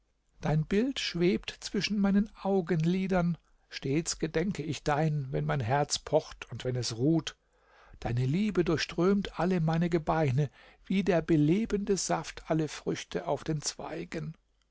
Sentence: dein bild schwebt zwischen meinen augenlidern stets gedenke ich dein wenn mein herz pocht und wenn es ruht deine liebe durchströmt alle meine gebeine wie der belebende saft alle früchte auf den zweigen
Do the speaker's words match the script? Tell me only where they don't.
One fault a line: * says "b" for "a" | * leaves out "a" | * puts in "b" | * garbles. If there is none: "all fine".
all fine